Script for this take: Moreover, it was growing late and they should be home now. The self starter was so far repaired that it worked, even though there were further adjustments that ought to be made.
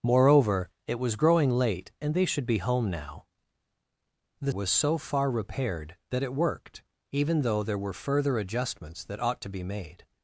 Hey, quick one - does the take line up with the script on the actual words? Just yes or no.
no